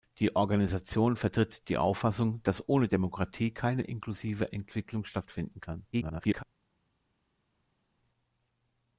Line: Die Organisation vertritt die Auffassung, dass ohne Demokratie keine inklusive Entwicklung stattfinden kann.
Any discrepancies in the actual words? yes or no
yes